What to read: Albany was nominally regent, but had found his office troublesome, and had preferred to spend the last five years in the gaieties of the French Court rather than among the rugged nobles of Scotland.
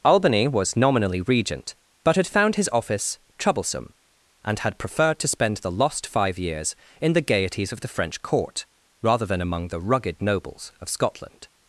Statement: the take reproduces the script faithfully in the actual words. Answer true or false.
false